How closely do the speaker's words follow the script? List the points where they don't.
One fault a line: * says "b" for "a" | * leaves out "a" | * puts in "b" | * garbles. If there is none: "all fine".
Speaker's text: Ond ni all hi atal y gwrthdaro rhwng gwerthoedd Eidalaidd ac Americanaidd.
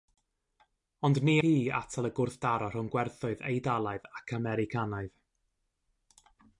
* leaves out "all"